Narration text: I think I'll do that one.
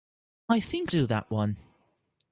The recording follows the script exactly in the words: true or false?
false